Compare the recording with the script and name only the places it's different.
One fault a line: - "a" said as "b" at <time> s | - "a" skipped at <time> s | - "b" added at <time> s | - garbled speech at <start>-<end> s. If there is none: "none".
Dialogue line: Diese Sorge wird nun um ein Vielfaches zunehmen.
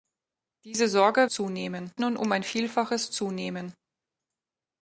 - "wird" said as "zunehmen" at 1.3 s